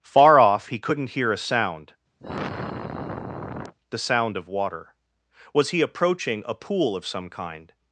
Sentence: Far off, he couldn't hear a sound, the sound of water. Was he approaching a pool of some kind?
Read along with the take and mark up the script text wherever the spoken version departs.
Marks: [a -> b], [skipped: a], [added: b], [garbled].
Far off, he couldn't hear a sound, the sound of water. Was he approaching a pool of some kind?